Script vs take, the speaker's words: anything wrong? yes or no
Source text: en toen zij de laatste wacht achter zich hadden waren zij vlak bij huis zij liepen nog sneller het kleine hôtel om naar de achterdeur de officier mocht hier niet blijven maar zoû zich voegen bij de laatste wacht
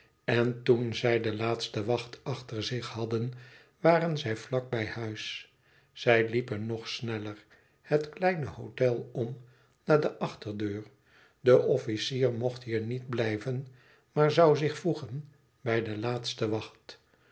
no